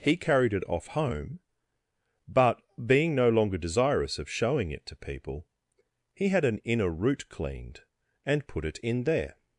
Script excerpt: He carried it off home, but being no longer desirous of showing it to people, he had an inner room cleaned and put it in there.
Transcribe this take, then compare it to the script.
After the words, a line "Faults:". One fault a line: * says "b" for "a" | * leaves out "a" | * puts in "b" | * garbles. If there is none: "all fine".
He carried it off home, but being no longer desirous of showing it to people, he had an inner root cleaned and put it in there.
Faults:
* says "root" for "room"